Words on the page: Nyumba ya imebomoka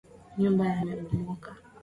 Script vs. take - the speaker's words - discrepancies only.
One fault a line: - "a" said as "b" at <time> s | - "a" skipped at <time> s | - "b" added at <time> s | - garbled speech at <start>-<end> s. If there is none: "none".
none